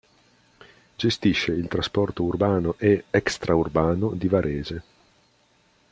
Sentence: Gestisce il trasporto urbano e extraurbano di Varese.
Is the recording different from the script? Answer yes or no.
no